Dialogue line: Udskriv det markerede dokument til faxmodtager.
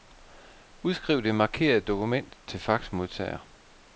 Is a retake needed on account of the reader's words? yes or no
no